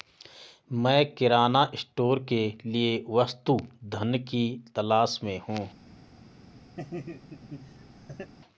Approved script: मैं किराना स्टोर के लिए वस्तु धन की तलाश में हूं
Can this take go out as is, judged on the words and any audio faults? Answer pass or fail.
fail